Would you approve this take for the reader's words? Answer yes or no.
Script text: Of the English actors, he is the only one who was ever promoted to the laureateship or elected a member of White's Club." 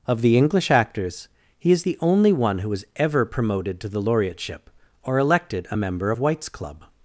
yes